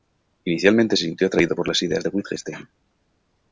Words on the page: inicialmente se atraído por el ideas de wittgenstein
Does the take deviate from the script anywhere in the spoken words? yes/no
yes